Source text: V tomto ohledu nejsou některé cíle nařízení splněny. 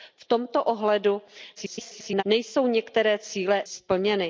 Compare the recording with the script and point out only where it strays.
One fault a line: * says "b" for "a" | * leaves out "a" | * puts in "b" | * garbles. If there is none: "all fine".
* garbles
* leaves out "nařízení"